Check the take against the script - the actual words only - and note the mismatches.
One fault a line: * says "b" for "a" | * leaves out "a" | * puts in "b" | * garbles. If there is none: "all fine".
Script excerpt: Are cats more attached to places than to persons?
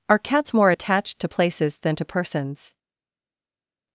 all fine